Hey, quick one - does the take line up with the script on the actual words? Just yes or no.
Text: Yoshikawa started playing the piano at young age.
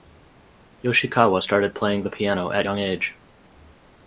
yes